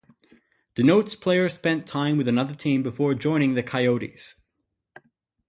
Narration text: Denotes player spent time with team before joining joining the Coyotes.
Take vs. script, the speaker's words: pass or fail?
fail